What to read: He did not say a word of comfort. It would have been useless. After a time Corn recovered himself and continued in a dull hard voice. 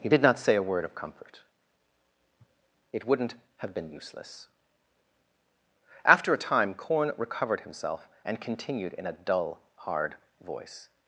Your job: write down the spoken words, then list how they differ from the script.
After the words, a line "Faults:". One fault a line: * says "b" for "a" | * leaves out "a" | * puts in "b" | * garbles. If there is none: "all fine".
He did not say a word of comfort. It wouldn't have been useless. After a time Corn recovered himself and continued in a dull hard voice.
Faults:
* says "wouldn't" for "would"